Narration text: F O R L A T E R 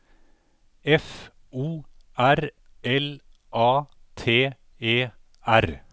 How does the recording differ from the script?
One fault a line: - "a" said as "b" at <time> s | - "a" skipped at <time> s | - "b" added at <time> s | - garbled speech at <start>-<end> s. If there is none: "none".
none